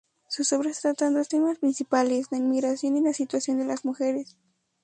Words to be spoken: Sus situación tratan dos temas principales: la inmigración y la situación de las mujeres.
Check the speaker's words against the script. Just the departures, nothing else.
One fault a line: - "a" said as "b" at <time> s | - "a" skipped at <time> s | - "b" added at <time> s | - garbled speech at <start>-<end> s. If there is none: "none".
- "situación" said as "obras" at 0.5 s